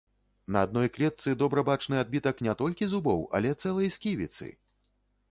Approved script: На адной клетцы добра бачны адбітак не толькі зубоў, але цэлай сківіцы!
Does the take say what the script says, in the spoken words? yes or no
yes